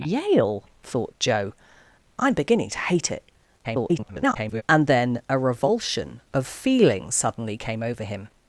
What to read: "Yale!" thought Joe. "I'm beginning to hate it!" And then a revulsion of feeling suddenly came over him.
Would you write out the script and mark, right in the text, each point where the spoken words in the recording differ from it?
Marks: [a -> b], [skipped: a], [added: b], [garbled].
"Yale!" thought Joe. "I'm beginning to hate it!" [garbled] And then a revulsion of feeling suddenly came over him.